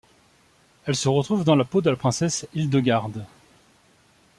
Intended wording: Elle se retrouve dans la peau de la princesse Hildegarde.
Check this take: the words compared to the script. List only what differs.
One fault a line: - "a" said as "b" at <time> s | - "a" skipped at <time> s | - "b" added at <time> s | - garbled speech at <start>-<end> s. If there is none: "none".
none